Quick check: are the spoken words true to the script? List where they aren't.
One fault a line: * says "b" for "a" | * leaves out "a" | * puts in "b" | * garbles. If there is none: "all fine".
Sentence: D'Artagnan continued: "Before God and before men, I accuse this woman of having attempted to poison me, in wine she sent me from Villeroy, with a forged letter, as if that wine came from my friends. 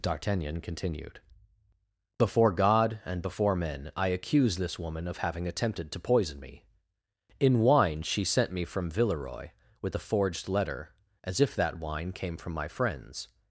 all fine